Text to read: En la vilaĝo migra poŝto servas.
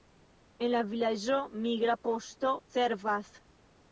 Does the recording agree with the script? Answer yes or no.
yes